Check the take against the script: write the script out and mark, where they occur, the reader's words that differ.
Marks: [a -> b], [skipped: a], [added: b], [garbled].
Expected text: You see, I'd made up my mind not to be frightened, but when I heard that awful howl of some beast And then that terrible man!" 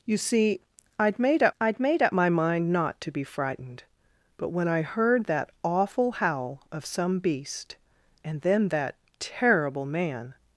You see, I'd made up [added: I'd made up] my mind not to be frightened, but when I heard that awful howl of some beast And then that terrible man!"